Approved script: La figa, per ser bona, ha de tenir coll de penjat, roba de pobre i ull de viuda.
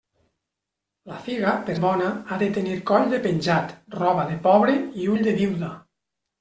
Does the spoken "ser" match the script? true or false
false